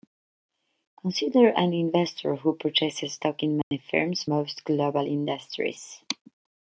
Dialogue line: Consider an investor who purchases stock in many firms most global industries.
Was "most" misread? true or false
false